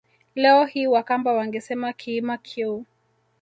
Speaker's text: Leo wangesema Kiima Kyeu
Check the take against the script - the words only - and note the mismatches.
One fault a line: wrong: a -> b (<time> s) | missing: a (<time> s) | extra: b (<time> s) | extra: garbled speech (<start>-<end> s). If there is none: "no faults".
extra: hii Wakamba (0.7 s)